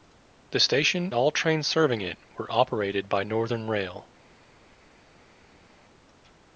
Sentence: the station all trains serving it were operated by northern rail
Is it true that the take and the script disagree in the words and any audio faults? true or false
false